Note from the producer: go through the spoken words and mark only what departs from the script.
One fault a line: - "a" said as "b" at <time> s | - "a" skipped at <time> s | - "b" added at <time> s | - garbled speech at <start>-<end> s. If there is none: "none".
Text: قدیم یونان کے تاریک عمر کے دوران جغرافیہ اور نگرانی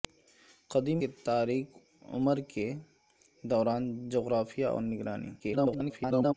- "یونان" skipped at 1.0 s
- garbled speech at 5.4-6.3 s